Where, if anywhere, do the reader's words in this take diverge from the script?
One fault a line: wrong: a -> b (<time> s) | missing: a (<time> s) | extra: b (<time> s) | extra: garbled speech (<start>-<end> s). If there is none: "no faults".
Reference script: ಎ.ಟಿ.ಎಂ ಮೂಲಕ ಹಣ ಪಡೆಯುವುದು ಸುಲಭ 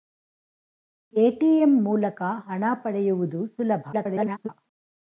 extra: garbled speech (3.9-4.5 s)